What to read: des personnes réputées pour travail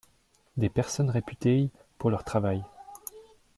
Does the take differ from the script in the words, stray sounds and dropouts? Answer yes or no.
yes